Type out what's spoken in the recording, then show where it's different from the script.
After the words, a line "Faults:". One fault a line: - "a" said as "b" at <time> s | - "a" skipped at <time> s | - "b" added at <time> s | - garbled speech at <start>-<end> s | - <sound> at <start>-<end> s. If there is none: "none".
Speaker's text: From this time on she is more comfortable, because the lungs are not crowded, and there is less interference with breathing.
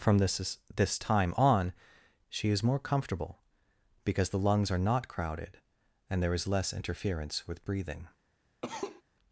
From this this time on she is more comfortable, because the lungs are not crowded, and there is less interference with breathing.
Faults:
- "this" added at 0.8 s
- cough at 8.6-9.0 s